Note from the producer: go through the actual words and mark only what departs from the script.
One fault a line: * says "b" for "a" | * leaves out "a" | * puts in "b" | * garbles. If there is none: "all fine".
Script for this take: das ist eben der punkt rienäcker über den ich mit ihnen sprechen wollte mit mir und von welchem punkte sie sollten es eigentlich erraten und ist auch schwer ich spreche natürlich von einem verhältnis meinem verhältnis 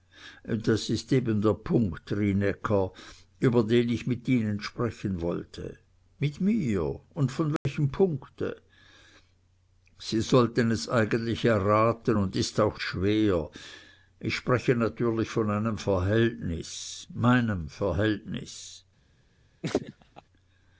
all fine